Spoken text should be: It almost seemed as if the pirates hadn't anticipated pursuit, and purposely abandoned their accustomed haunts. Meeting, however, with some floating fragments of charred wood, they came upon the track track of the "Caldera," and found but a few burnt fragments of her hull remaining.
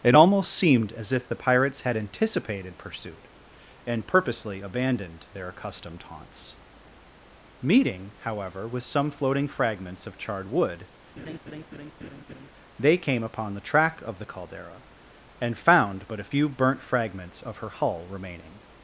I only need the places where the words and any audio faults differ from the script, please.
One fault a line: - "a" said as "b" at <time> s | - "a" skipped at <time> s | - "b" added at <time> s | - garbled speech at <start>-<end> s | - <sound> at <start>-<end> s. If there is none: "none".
- "hadn't" said as "had" at 1.8 s
- laugh at 11.2-12.5 s
- "track" skipped at 14.0 s